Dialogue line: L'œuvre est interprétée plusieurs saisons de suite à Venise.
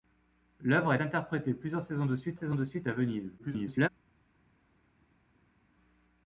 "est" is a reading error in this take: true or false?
true